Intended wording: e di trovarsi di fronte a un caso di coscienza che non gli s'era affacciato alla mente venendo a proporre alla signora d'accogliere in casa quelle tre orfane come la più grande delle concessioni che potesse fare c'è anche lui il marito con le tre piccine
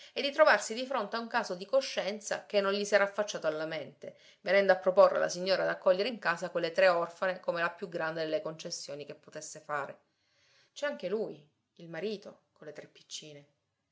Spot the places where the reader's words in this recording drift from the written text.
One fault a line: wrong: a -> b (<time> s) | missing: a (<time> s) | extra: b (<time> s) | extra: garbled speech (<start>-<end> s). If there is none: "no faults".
no faults